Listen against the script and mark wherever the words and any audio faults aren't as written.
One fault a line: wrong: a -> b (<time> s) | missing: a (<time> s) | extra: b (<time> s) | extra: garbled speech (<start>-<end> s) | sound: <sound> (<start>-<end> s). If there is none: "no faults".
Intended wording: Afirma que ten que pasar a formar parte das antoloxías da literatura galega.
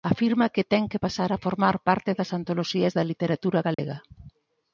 sound: dropout (3.7-3.8 s)